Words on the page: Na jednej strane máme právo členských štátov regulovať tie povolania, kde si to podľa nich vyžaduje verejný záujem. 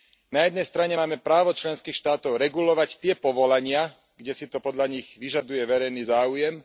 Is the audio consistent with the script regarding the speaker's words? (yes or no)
yes